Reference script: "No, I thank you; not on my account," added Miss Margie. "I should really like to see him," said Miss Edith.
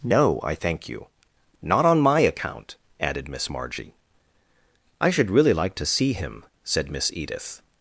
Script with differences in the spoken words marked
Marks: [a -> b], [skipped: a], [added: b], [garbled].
"No, I thank you; not on my account," added Miss Margie. "I should really like to see him," said Miss Edith.